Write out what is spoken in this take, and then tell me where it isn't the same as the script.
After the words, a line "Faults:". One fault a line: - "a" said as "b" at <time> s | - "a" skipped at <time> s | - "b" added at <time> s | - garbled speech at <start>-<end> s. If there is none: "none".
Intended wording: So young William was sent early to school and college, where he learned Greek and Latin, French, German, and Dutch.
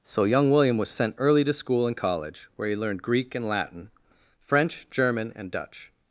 So young William was sent early to school and college, where he learned Greek and Latin, French, German, and Dutch.
Faults:
none